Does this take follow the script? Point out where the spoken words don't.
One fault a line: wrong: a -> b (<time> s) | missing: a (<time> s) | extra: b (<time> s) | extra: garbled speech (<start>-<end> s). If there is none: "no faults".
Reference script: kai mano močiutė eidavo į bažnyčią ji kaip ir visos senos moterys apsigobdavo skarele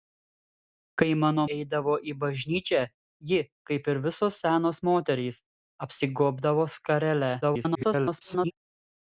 missing: močiutė (1.4 s)
extra: garbled speech (7.4-8.5 s)